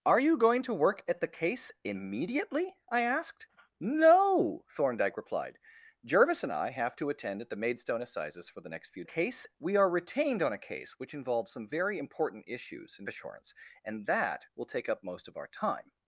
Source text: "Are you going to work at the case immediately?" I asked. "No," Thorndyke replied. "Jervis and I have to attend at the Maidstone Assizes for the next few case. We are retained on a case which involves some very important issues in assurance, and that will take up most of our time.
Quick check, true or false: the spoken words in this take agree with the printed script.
true